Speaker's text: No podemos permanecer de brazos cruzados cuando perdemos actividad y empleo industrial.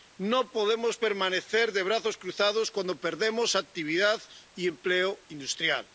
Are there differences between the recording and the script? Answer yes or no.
no